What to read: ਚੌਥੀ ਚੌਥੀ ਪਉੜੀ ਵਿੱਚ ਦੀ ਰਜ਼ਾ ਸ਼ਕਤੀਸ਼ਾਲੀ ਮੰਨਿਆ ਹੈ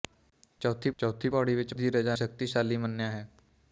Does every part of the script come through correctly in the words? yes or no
yes